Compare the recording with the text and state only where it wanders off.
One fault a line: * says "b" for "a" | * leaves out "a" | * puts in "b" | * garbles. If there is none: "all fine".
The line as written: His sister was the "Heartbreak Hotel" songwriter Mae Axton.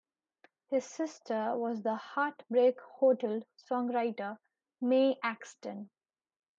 all fine